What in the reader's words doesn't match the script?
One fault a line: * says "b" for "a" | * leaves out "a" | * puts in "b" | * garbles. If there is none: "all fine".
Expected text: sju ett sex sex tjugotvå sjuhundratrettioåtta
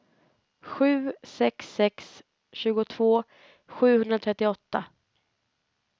* leaves out "ett"